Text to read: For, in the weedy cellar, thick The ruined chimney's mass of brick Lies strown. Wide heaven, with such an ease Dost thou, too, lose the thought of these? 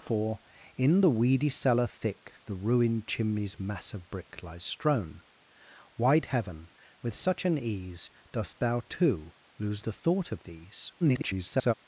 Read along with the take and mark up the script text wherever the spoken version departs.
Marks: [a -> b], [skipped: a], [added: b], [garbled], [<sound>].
For, in the weedy cellar, thick The ruined chimney's mass of brick Lies strown. Wide heaven, with such an ease Dost thou, too, lose the thought of these? [garbled]